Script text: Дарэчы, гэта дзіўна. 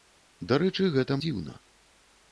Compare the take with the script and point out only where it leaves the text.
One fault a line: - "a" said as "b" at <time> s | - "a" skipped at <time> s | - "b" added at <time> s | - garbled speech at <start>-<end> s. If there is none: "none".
none